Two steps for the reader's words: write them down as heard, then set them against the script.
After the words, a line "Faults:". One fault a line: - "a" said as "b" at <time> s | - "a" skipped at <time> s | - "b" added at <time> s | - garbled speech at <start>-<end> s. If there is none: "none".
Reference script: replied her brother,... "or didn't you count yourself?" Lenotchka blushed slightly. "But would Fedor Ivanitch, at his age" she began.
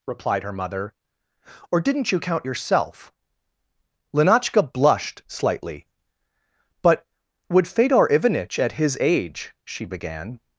replied her mother,... "or didn't you count yourself?" Lenotchka blushed slightly. "But would Fedor Ivanitch, at his age" she began.
Faults:
- "brother" said as "mother" at 0.5 s